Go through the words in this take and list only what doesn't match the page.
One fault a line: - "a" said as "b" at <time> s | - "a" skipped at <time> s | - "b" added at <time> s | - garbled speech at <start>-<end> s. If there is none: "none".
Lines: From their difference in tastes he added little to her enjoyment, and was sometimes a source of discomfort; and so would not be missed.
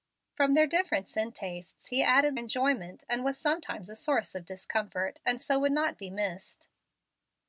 - "little to her" skipped at 2.3 s